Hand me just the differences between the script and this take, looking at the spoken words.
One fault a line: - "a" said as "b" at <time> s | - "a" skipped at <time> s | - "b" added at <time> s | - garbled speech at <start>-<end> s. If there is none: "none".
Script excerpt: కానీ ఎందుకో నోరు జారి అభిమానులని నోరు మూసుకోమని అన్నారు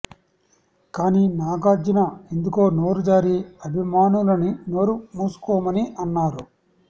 - "నాగార్జున" added at 1.4 s